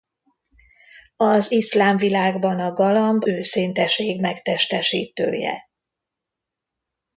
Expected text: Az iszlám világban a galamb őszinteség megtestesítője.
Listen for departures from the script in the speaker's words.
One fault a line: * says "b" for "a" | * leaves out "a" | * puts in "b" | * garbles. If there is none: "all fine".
all fine